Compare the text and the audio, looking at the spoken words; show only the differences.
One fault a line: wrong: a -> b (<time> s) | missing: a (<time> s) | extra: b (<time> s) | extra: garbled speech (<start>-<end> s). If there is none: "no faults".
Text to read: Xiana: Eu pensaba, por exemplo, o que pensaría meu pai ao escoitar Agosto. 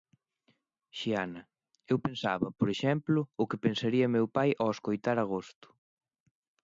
no faults